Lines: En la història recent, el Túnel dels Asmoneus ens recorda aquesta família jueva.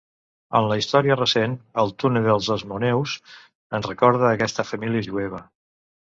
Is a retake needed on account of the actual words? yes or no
no